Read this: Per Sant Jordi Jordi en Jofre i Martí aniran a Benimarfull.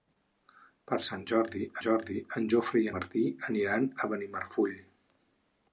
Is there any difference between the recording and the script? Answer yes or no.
no